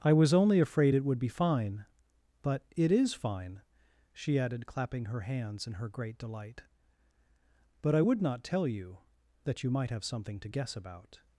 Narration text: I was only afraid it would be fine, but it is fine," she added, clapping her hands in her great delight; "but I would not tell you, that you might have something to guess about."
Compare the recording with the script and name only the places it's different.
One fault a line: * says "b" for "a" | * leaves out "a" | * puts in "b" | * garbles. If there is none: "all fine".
all fine